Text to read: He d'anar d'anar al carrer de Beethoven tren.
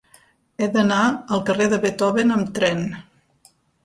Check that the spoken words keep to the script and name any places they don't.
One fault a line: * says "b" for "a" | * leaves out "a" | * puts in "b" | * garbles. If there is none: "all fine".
* leaves out "d'anar"
* puts in "amb"